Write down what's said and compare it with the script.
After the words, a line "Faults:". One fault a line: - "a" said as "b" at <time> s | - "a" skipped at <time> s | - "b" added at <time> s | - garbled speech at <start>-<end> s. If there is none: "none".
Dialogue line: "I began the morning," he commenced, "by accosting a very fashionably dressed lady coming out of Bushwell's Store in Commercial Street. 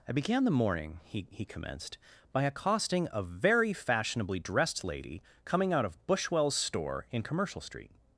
"I began the morning," he he commenced, "by accosting a very fashionably dressed lady coming out of Bushwell's Store in Commercial Street.
Faults:
- "he" added at 1.3 s